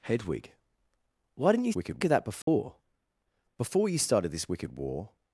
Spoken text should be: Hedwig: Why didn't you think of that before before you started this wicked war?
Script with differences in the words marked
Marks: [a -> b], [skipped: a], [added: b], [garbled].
Hedwig: Why didn't you [think -> wicked] of that before before you started this wicked war?